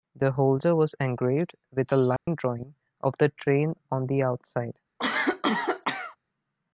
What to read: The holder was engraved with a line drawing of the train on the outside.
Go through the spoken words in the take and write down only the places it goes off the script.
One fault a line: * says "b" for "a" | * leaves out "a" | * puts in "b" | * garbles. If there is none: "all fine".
all fine